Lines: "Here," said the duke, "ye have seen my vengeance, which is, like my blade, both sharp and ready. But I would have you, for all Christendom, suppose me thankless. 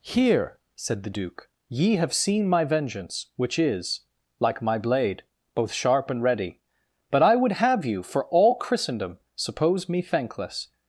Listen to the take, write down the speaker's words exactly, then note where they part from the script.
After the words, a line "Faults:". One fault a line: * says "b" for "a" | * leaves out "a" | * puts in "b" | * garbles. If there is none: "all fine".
"Here," said the duke, "ye have seen my vengeance, which is, like my blade, both sharp and ready. But I would have you, for all Christendom, suppose me thankless.
Faults:
all fine